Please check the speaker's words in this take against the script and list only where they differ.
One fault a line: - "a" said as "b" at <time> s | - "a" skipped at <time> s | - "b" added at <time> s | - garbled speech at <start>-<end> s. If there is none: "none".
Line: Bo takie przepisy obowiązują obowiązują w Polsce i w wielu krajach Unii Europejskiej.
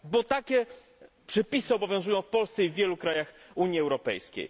- "obowiązują" skipped at 2.2 s